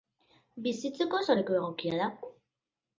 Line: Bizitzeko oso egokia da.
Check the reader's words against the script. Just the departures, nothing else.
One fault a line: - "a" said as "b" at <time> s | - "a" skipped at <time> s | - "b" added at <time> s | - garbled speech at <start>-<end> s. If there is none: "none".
- "leku" added at 1.4 s